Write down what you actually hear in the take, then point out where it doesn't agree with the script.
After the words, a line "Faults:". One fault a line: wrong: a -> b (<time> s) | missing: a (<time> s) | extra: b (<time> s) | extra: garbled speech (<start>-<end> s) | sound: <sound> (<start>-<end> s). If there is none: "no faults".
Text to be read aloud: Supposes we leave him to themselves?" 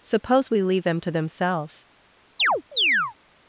Suppose we leave them to themselves?"
Faults:
wrong: Supposes -> Suppose (0.0 s)
wrong: him -> them (0.8 s)
sound: chirp (2.4-3.1 s)